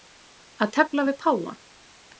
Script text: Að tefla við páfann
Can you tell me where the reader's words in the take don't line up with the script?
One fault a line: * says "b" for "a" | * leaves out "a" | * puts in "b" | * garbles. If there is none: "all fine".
all fine